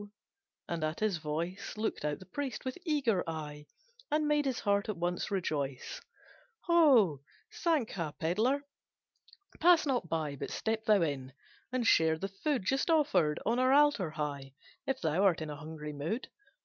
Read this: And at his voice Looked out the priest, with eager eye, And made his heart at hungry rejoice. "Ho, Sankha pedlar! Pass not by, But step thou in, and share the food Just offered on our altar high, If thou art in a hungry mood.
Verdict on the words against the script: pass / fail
fail